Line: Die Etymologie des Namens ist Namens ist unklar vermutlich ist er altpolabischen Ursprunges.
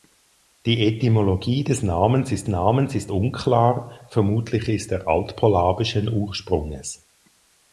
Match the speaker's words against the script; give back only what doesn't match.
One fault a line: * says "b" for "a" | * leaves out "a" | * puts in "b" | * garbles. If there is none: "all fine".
all fine